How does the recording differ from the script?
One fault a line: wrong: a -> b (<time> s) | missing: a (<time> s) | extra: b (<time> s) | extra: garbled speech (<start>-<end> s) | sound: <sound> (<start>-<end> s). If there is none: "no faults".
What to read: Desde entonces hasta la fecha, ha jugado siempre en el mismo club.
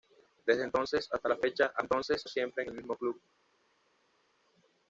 wrong: jugado -> entonces (1.8 s)